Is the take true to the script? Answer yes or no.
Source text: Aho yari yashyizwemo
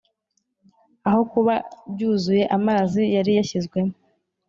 no